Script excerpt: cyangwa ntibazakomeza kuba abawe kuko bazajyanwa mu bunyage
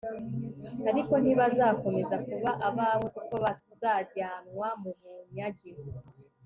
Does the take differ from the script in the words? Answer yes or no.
yes